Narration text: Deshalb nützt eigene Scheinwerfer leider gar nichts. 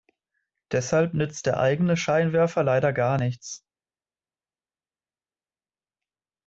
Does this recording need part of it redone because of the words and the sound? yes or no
yes